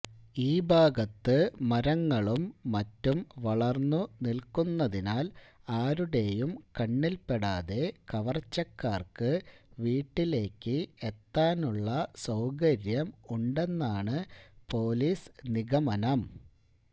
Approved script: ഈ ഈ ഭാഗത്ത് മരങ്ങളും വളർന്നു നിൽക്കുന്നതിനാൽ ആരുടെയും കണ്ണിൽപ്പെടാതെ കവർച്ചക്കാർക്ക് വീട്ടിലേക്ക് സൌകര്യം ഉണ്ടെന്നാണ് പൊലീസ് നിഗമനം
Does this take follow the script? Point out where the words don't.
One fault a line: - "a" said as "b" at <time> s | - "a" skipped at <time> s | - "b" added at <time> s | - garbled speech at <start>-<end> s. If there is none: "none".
- "ഈ" skipped at 0.5 s
- "മറ്റും" added at 2.7 s
- "എത്താനുള്ള" added at 11.1 s